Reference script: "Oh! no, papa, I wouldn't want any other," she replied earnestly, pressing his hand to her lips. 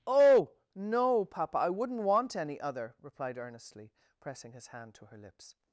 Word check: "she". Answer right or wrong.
wrong